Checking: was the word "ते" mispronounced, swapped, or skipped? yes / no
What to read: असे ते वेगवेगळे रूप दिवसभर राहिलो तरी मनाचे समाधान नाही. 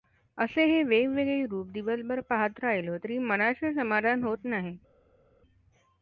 yes